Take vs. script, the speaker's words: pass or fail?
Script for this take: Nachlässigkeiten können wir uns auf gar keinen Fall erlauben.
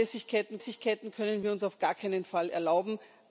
fail